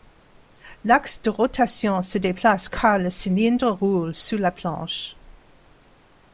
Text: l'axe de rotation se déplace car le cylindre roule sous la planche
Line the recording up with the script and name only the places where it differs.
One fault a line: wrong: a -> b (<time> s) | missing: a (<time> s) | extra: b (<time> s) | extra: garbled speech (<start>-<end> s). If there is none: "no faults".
no faults